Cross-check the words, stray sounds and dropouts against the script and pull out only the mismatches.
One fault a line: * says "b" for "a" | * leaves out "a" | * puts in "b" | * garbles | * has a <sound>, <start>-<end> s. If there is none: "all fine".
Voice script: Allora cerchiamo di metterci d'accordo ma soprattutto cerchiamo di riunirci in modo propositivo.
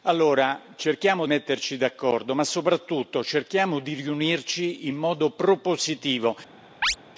* leaves out "di"
* has a chirp, 6.8-7.0 s